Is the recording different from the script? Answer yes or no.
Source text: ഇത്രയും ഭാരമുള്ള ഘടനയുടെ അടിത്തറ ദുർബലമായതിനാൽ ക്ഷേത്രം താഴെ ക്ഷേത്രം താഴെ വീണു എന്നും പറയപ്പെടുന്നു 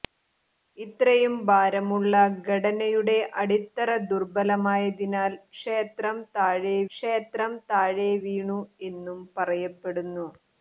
no